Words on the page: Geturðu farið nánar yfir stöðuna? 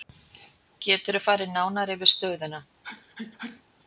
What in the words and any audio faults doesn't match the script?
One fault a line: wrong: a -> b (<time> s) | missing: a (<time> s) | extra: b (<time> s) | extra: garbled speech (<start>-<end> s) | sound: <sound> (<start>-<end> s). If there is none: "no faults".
sound: sneeze (2.8-3.6 s)